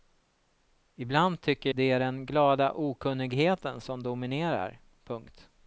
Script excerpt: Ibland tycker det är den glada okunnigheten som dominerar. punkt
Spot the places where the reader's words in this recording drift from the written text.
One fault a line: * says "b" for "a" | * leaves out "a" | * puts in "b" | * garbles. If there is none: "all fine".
all fine